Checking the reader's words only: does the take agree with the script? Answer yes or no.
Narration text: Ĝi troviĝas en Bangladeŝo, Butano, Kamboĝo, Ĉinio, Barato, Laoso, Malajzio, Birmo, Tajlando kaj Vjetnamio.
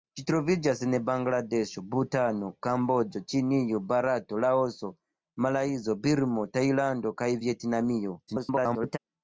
no